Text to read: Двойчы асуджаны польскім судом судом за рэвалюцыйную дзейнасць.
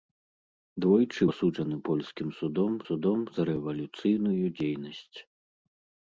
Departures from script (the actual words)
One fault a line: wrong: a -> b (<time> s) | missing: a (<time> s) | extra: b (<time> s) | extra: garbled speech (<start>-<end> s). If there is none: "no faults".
no faults